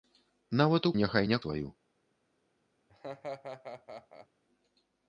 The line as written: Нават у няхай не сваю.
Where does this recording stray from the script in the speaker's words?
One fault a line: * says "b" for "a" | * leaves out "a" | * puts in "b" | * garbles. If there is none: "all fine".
all fine